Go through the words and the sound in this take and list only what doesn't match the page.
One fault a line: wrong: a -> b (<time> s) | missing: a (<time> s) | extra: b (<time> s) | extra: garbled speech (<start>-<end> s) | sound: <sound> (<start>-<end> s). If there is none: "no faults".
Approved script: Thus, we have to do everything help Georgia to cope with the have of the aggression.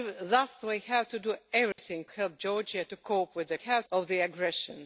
sound: dropout (1.7-1.8 s)